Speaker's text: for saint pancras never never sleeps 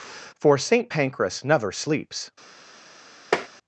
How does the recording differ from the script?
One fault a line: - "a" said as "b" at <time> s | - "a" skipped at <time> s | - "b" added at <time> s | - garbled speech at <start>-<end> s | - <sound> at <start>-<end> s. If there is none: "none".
- "never" skipped at 1.7 s
- tap at 3.3-3.5 s